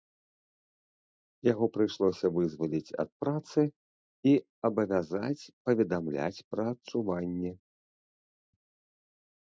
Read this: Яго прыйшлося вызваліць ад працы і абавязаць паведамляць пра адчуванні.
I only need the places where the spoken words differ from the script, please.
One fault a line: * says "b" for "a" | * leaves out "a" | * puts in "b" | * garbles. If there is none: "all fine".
all fine